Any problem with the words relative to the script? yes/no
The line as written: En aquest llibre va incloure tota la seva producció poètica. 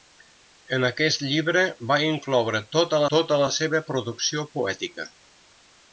yes